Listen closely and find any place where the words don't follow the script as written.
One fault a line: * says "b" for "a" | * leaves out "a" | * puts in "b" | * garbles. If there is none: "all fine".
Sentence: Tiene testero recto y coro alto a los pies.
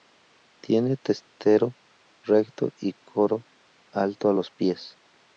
all fine